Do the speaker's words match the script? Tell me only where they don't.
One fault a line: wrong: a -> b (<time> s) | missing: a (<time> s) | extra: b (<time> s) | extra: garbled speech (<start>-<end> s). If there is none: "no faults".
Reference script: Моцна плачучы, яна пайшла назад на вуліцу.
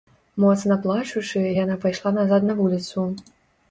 no faults